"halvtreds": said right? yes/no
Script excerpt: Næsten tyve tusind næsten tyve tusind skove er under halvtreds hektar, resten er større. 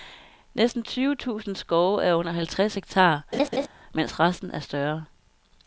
yes